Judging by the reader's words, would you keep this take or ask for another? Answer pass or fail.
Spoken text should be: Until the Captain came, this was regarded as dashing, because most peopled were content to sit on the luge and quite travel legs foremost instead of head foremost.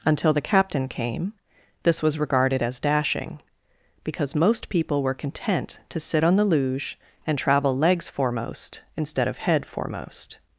fail